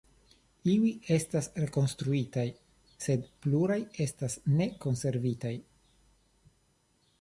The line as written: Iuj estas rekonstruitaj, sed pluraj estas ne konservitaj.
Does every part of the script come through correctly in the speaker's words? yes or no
yes